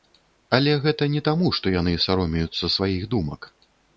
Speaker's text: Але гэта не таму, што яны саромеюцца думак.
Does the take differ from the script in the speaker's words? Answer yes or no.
yes